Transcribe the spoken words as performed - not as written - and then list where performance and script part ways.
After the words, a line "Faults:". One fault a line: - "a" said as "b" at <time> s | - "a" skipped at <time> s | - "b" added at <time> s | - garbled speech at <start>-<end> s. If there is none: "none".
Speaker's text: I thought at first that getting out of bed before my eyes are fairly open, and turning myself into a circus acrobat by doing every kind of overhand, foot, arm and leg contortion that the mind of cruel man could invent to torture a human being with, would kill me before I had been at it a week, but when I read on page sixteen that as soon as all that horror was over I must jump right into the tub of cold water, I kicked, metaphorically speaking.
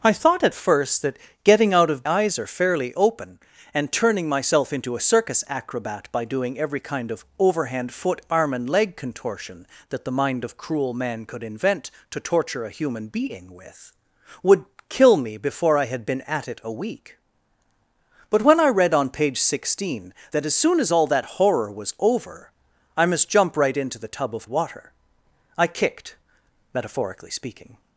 I thought at first that getting out of eyes are fairly open, and turning myself into a circus acrobat by doing every kind of overhand, foot, arm and leg contortion that the mind of cruel man could invent to torture a human being with, would kill me before I had been at it a week, but when I read on page sixteen that as soon as all that horror was over I must jump right into the tub of water, I kicked, metaphorically speaking.
Faults:
- "bed before my" skipped at 2.0 s
- "cold" skipped at 24.5 s